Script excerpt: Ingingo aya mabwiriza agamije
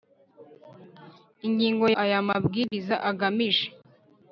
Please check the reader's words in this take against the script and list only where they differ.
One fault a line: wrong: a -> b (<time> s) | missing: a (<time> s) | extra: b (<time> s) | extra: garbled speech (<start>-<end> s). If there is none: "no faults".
no faults